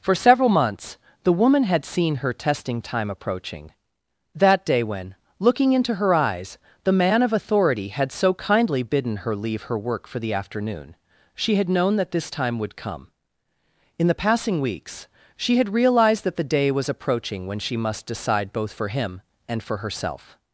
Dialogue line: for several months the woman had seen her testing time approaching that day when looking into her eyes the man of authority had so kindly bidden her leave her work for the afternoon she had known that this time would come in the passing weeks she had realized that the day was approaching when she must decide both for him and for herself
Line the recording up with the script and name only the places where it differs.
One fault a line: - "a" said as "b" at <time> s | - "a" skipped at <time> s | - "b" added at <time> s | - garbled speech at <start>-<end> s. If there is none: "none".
none